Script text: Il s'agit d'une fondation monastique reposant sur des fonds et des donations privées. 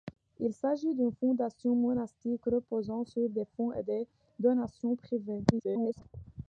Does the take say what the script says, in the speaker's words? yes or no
no